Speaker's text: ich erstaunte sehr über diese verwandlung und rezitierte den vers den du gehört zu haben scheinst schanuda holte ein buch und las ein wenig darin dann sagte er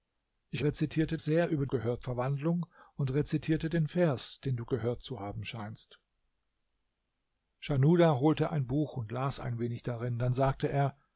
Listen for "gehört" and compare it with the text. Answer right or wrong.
right